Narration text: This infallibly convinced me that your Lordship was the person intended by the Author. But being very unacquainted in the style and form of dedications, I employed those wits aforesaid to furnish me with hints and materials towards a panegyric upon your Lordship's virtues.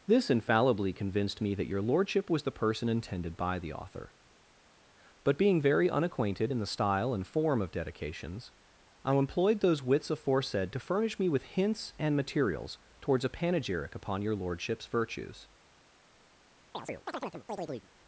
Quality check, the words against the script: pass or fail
pass